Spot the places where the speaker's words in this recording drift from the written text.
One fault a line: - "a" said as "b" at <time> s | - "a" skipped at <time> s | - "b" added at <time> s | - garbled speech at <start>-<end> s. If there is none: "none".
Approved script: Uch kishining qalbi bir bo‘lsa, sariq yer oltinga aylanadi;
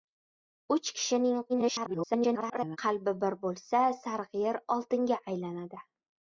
- garbled speech at 1.5-2.8 s